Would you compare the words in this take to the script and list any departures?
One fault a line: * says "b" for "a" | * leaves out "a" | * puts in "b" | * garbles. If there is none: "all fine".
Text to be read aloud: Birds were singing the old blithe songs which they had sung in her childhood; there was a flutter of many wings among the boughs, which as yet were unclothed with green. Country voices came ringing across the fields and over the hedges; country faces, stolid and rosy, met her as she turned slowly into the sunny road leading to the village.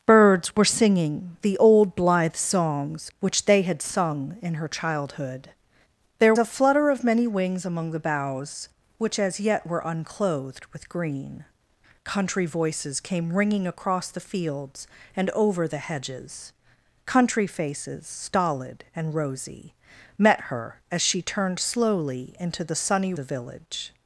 * leaves out "was"
* leaves out "road leading to"